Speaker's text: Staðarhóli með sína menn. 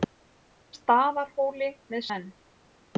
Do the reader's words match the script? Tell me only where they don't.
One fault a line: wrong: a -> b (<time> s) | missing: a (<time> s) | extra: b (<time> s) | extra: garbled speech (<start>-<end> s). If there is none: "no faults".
missing: sína (2.0 s)